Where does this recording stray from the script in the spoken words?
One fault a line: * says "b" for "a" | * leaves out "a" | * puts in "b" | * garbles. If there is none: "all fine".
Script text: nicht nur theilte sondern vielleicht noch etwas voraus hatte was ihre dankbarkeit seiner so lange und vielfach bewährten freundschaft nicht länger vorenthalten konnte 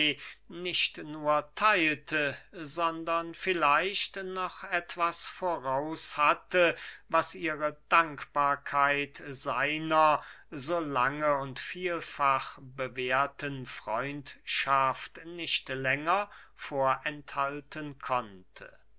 all fine